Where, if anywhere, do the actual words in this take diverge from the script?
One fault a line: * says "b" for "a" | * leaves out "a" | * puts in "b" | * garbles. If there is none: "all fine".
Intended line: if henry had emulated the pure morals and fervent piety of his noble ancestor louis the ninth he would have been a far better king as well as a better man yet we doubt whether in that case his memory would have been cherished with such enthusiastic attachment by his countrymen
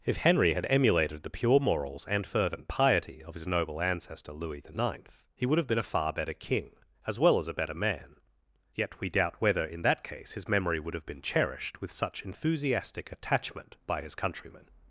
all fine